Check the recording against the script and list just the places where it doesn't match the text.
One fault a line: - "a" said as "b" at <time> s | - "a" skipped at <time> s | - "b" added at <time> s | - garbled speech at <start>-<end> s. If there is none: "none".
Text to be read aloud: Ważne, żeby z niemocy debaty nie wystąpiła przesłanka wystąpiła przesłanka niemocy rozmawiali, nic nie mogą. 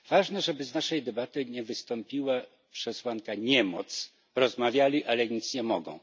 - "niemocy" said as "naszej" at 0.7 s
- "wystąpiła przesłanka" skipped at 3.3 s
- "ale" added at 5.0 s